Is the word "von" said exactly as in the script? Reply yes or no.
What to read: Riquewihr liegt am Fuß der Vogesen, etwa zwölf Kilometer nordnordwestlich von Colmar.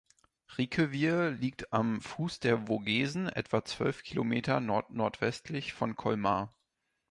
yes